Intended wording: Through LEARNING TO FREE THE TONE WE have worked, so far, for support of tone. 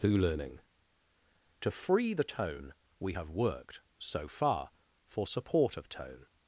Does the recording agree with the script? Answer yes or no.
yes